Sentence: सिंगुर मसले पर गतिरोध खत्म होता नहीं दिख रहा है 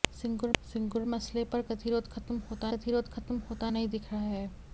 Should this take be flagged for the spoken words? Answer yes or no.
yes